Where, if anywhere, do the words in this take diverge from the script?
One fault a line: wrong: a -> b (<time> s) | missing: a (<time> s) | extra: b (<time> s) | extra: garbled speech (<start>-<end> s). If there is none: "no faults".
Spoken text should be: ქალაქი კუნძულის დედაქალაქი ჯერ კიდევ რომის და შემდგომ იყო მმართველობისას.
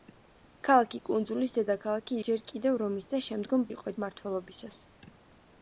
no faults